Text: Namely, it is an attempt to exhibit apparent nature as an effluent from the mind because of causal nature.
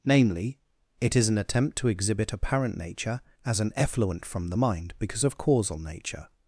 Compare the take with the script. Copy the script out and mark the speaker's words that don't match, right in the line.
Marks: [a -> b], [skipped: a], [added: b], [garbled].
Namely, it is an attempt to exhibit apparent nature as an effluent from the mind because of causal nature.